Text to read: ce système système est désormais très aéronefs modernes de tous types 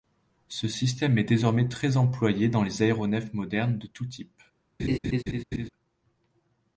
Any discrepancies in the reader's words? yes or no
yes